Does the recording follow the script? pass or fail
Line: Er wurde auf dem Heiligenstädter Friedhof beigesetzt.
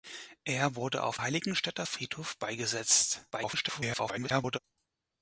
fail